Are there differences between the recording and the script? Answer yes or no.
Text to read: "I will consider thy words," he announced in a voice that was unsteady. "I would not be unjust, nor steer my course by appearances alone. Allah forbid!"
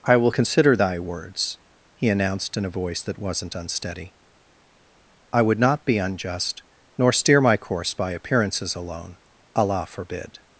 yes